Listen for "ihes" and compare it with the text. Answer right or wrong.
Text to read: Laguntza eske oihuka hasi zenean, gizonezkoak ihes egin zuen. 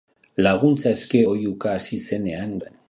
wrong